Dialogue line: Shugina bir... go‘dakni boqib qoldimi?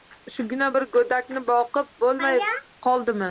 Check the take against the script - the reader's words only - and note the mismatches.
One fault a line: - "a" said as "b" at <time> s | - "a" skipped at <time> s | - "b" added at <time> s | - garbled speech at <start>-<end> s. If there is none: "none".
- "bo‘lmay" added at 2.0 s